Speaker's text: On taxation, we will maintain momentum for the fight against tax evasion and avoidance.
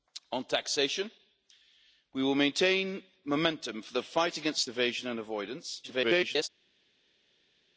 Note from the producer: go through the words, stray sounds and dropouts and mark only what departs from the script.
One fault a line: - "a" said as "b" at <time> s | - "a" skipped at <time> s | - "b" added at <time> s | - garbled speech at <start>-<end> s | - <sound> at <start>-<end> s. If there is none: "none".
- "tax" skipped at 4.7 s
- garbled speech at 5.8-6.5 s